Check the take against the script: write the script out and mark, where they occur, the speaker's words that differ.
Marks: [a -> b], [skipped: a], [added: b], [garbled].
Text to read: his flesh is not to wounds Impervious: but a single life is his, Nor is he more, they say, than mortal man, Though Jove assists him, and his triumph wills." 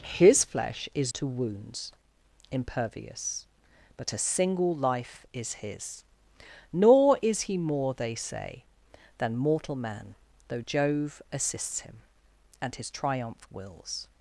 his flesh is [skipped: not] to wounds Impervious: but a single life is his, Nor is he more, they say, than mortal man, Though Jove assists him, and his triumph wills."